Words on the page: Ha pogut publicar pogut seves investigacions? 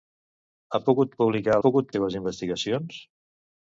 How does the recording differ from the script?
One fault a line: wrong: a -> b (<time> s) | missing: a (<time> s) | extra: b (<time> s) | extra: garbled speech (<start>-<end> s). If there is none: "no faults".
no faults